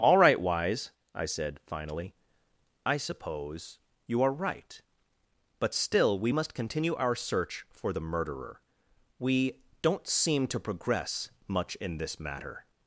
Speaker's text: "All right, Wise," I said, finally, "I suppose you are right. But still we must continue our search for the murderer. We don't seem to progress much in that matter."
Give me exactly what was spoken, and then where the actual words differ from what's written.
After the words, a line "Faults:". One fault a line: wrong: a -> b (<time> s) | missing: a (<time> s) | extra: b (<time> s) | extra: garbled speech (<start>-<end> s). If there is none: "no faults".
"All right, Wise," I said, finally, "I suppose you are right. But still we must continue our search for the murderer. We don't seem to progress much in this matter."
Faults:
wrong: that -> this (12.0 s)